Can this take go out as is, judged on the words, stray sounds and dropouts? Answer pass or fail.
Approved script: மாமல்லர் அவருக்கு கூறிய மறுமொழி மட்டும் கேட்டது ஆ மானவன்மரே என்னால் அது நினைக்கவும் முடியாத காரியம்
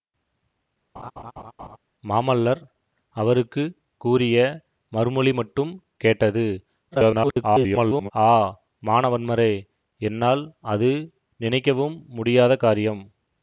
fail